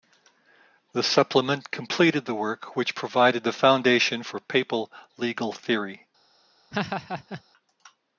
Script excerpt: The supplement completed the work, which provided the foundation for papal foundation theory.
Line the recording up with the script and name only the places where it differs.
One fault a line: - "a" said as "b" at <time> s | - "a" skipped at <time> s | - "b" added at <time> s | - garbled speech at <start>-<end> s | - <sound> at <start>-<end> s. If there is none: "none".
- "foundation" said as "legal" at 5.2 s
- laugh at 6.7-7.4 s